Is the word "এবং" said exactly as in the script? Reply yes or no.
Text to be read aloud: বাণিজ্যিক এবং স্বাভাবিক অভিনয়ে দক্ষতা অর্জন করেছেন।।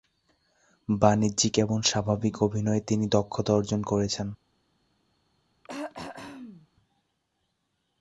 yes